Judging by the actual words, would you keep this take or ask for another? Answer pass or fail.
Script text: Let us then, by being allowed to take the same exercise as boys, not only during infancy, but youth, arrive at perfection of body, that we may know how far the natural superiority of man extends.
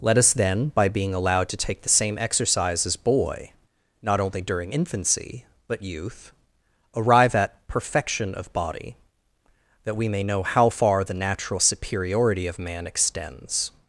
fail